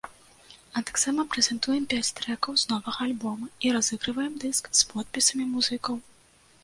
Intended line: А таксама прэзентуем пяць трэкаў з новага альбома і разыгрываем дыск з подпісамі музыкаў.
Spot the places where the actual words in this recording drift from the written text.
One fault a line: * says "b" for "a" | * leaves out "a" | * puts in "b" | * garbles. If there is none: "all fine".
all fine